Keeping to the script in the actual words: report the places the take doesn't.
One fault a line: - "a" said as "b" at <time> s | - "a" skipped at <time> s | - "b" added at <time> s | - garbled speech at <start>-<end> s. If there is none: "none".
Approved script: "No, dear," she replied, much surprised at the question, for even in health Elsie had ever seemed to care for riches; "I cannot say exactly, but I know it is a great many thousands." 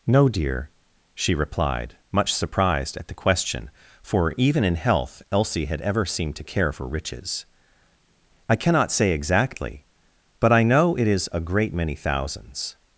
none